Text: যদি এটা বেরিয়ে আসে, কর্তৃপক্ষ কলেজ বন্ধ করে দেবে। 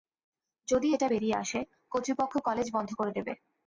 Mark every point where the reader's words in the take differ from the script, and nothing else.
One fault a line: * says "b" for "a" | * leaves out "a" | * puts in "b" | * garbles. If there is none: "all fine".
all fine